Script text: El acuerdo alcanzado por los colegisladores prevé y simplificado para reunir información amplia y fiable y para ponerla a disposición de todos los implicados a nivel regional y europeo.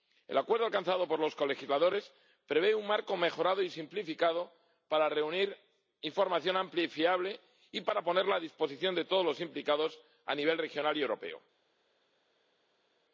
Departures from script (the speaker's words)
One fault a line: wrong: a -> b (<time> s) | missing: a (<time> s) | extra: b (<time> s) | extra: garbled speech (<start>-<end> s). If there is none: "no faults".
extra: un marco mejorado (2.8 s)